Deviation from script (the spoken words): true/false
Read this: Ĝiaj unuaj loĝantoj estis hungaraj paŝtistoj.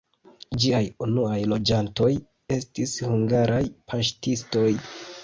false